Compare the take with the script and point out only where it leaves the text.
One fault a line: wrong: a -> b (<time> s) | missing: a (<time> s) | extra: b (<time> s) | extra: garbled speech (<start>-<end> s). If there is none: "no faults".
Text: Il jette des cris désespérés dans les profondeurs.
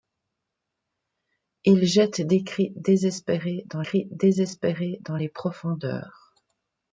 extra: cris désespérés dans (3.8 s)